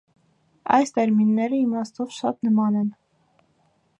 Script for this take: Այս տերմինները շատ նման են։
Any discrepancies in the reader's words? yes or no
yes